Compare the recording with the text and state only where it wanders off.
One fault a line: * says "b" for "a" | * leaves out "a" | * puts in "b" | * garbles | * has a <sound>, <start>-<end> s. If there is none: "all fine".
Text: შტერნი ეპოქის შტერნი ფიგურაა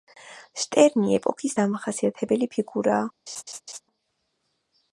* says "დამახასიათებელი" for "შტერნი"
* has a laugh, 3.3-3.8 s